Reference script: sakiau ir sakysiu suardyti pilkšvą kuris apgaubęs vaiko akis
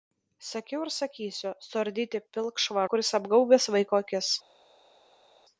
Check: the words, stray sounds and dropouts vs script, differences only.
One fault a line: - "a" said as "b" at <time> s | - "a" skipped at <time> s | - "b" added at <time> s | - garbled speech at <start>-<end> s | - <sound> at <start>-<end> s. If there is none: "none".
none